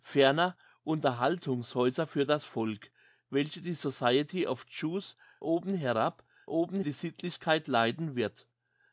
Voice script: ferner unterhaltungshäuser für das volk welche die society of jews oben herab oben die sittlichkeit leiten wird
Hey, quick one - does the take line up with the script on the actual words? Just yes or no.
yes